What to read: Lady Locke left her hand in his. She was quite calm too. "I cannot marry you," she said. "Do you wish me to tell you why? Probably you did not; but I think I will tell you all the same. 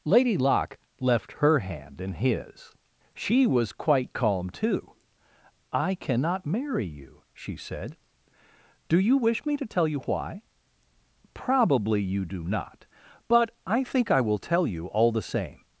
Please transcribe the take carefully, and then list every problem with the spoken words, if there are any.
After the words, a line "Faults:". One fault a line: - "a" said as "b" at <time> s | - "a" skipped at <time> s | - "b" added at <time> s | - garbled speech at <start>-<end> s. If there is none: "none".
Lady Locke left her hand in his. She was quite calm too. "I cannot marry you," she said. "Do you wish me to tell you why? Probably you do not; but I think I will tell you all the same.
Faults:
- "did" said as "do" at 12.2 s